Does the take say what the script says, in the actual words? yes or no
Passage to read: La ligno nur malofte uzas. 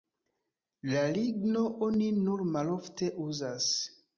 no